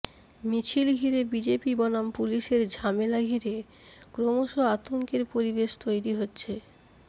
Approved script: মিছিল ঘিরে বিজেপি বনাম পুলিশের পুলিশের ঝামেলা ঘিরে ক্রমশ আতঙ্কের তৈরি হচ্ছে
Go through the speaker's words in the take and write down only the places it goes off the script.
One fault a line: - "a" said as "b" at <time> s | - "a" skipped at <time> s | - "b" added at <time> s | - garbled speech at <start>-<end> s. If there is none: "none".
- "পুলিশের" skipped at 2.6 s
- "পরিবেশ" added at 5.3 s